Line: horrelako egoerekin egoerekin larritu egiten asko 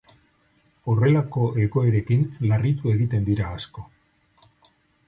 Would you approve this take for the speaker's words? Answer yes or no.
no